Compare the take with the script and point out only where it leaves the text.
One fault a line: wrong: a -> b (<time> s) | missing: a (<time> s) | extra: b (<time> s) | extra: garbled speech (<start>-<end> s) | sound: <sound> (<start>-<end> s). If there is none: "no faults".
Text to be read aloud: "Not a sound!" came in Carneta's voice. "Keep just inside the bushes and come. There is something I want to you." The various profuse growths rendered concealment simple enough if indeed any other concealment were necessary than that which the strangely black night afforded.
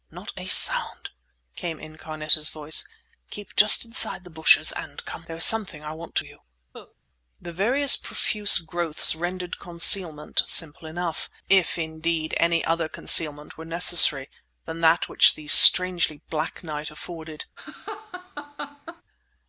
sound: cough (6.7-7.0 s)
sound: laugh (17.6-19.0 s)